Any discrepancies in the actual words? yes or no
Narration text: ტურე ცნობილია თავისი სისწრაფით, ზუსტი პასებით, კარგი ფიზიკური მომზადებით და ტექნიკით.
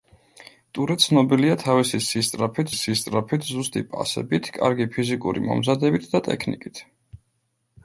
yes